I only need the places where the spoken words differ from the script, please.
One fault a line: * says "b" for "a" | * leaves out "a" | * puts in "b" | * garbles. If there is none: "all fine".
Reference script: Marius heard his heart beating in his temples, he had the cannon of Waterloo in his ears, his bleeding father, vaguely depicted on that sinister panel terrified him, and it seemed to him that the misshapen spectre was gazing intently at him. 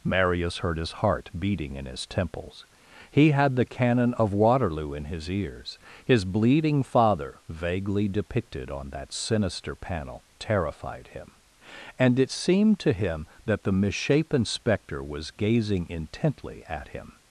all fine